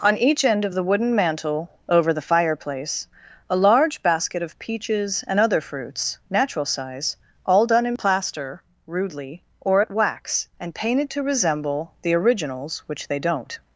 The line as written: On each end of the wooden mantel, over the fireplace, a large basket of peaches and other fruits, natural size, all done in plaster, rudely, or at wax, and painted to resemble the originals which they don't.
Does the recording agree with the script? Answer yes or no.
yes